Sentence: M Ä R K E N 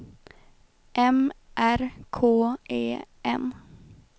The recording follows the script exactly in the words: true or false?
false